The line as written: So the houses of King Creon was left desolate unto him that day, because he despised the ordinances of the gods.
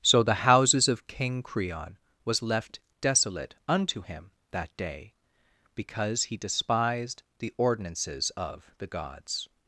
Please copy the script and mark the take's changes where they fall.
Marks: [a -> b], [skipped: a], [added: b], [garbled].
So the houses of King Creon was left desolate unto him that day, because he despised the ordinances of the gods.